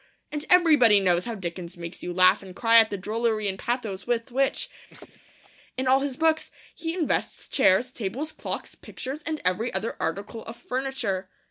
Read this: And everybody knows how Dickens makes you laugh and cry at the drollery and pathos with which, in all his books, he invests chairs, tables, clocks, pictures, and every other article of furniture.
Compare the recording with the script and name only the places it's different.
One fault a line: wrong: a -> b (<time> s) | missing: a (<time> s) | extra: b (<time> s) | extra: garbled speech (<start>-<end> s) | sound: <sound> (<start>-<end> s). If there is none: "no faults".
sound: laugh (4.9-5.5 s)